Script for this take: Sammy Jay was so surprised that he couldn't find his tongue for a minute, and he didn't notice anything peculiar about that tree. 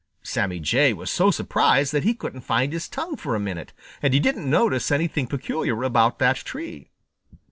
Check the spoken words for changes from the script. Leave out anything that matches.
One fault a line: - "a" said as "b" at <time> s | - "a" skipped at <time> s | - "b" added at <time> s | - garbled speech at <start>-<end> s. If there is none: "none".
none